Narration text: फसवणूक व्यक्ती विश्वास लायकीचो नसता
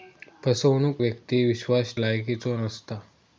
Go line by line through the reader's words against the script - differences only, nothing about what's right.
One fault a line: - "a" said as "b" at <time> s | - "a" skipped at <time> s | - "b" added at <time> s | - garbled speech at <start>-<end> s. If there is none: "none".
none